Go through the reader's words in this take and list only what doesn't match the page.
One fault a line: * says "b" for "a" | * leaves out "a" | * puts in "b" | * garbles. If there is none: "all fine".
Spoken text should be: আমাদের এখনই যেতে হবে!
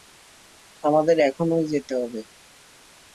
all fine